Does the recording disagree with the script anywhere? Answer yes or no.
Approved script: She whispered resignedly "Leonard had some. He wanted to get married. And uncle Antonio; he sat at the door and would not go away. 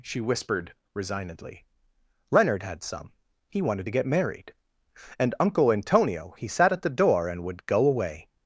yes